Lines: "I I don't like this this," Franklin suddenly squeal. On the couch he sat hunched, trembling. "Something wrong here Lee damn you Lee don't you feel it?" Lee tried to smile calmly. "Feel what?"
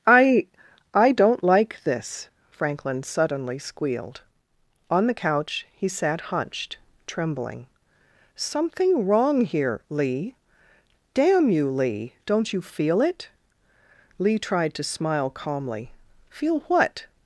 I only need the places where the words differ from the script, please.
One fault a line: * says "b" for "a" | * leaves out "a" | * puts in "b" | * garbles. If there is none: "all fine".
* leaves out "this"
* says "squealed" for "squeal"